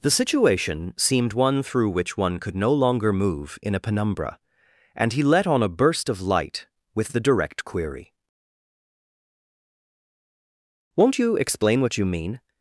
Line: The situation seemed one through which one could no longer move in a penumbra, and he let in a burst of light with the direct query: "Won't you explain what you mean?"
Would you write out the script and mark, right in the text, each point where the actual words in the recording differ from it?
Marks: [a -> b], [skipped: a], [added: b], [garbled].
The situation seemed one through which one could no longer move in a penumbra, and he let [in -> on] a burst of light with the direct query: "Won't you explain what you mean?"